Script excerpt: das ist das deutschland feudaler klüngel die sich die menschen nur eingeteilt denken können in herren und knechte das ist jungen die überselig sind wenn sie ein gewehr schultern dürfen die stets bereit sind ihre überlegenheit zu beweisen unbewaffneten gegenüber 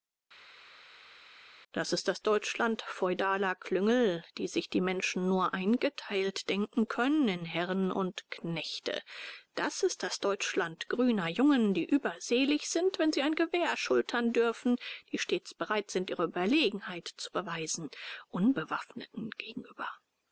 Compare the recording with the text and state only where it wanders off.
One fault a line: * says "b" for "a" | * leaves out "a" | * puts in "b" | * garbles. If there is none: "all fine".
* puts in "das deutschland grüner"